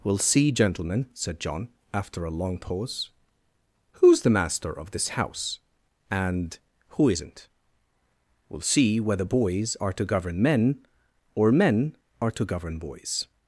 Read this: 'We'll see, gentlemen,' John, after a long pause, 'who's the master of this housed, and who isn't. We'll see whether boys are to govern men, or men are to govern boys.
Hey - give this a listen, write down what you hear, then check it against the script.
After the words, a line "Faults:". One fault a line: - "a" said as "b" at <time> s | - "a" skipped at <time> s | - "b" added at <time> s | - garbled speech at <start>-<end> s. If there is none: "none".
'We'll see, gentlemen,' said John, after a long pause, 'who's the master of this house, and who isn't. We'll see whether boys are to govern men, or men are to govern boys.
Faults:
- "said" added at 1.1 s
- "housed" said as "house" at 5.1 s